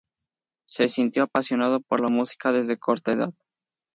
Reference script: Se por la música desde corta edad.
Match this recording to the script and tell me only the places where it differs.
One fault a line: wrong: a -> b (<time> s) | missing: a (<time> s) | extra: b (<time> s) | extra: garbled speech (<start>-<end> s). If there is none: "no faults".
extra: sintió apasionado (0.9 s)